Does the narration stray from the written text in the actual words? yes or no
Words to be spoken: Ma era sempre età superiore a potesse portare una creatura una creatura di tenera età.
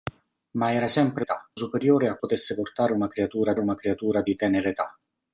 no